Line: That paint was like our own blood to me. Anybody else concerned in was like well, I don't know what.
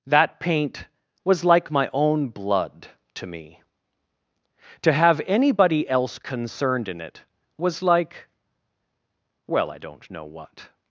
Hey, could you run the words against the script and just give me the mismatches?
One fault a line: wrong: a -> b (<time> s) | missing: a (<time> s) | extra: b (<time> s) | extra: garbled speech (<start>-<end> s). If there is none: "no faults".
wrong: our -> my (1.7 s)
extra: To have (4.8 s)
extra: it (7.0 s)